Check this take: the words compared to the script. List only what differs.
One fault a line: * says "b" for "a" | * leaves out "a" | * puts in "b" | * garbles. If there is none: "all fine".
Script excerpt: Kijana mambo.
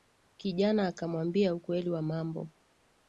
* puts in "akamwambia ukweli wa"